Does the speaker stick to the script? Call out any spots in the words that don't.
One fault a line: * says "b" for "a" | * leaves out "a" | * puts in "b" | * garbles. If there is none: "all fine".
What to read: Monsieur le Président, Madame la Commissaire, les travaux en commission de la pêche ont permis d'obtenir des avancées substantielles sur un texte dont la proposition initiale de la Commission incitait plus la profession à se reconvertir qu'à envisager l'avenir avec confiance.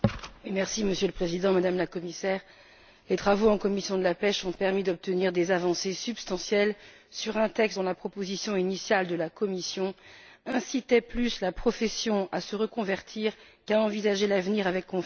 all fine